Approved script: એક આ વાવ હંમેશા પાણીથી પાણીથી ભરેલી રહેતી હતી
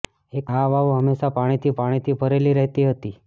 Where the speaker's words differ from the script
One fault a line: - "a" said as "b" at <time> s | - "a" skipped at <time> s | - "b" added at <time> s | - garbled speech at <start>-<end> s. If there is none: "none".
none